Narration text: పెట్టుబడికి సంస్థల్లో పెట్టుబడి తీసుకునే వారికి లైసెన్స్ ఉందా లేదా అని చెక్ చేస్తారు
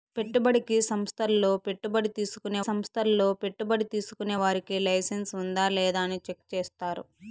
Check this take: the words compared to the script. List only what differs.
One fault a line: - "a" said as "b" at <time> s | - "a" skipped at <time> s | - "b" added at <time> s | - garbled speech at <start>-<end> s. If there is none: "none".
- "సంస్థల్లో పెట్టుబడి తీసుకునే" added at 2.6 s